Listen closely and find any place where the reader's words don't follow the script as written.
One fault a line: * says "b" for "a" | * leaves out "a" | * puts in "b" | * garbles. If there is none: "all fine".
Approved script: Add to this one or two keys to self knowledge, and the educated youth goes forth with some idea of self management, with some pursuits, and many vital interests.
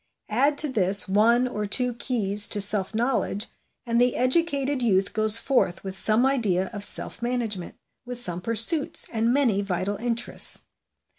all fine